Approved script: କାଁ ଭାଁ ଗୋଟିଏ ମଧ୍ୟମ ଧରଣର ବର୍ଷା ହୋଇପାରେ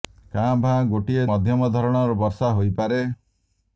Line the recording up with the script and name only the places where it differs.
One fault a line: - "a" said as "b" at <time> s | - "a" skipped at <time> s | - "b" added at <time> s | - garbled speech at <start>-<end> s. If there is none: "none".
none